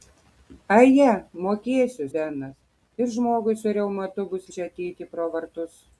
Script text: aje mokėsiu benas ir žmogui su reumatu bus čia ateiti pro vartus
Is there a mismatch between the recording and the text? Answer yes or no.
no